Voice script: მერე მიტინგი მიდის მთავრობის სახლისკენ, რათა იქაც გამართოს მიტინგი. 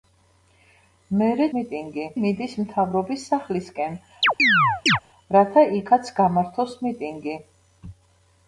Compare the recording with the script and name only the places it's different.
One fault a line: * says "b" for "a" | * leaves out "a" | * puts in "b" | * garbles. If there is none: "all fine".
all fine